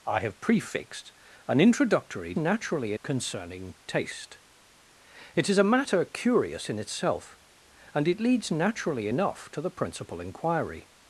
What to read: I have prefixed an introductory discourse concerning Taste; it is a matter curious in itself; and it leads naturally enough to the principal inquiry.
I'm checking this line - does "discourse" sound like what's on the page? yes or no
no